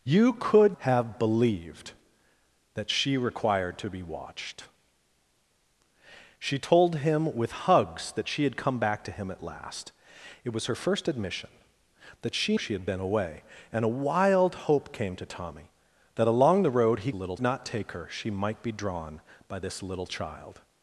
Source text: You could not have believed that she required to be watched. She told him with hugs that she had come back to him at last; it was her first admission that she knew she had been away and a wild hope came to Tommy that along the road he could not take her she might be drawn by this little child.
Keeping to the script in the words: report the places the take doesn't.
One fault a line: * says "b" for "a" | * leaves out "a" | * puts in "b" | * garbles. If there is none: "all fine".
* leaves out "not"
* leaves out "knew"
* says "little" for "could"